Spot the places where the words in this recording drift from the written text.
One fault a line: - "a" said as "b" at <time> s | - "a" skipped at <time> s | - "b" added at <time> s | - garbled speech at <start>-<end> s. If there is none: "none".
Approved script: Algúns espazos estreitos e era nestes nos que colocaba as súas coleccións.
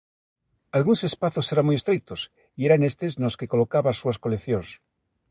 - "eran moi" added at 1.5 s